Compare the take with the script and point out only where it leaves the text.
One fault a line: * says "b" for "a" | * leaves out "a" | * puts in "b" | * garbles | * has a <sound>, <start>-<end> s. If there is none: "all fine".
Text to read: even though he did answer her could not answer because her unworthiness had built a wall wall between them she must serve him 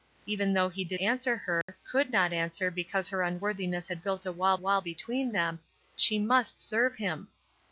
* has a dropout, 1.6-1.7 s